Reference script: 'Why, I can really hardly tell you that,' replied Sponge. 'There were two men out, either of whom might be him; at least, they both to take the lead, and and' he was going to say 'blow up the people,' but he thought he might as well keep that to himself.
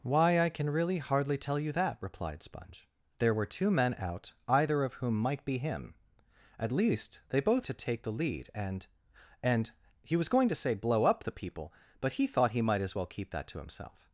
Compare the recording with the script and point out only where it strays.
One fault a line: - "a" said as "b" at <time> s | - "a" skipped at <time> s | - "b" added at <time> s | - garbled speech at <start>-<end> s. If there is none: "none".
none